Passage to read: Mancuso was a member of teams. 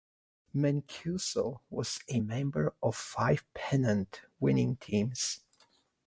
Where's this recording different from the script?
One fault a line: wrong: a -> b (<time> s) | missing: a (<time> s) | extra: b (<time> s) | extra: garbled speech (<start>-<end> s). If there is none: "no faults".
extra: five pennant winning (2.9 s)